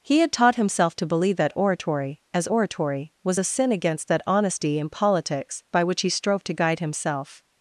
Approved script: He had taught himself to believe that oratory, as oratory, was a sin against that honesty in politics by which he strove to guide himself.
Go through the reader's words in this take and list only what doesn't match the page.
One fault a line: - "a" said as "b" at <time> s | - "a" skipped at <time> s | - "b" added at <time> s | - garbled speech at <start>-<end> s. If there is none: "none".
none